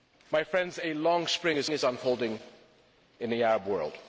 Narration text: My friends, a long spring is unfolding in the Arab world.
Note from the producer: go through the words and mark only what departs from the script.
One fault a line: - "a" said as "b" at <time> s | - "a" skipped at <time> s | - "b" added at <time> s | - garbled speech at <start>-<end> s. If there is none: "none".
- "is" added at 1.7 s